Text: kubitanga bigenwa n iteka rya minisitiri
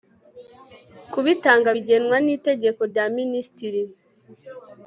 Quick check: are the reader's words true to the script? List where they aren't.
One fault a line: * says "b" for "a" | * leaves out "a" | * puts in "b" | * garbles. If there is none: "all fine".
all fine